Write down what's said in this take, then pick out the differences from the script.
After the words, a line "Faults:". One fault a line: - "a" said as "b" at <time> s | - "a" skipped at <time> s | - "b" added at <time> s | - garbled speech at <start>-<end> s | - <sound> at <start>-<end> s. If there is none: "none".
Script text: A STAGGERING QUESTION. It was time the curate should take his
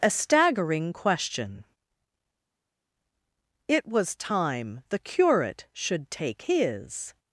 A STAGGERING QUESTION. It was time the curate should take his
Faults:
none